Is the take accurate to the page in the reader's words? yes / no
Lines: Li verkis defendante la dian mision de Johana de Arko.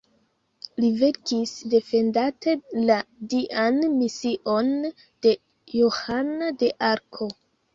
yes